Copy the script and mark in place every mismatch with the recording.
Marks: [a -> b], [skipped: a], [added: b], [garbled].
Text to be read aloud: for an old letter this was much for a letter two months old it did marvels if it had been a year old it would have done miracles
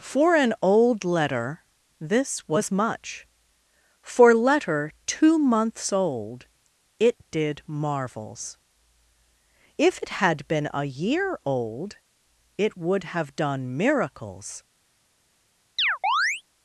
for an old letter this was much for [skipped: a] letter two months old it did marvels if it had been a year old it would have done miracles